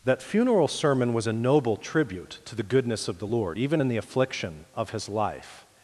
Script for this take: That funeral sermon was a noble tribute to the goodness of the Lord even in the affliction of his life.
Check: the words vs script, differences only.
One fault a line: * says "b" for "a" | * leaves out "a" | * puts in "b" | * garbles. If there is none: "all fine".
all fine